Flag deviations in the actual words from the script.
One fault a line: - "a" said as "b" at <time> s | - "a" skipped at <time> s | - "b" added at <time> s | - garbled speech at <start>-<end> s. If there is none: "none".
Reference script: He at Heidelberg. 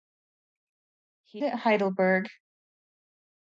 none